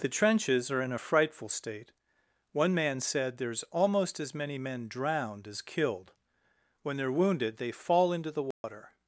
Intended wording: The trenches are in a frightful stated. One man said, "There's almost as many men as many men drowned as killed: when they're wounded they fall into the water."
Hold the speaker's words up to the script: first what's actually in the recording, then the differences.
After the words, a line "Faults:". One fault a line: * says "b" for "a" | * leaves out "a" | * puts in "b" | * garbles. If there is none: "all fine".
The trenches are in a frightful state. One man said, "There's almost as many men drowned as killed: when they're wounded they fall into the water."
Faults:
* says "state" for "stated"
* leaves out "as many men"